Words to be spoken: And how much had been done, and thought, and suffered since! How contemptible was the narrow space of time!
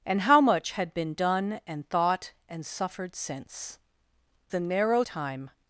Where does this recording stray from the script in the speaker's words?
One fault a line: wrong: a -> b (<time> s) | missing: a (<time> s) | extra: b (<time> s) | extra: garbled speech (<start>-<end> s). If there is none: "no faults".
missing: How contemptible was (3.8 s)
missing: space of (5.0 s)